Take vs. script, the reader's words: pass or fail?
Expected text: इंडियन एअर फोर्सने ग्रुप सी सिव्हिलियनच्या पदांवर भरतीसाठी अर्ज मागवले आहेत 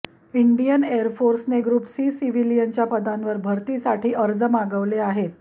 pass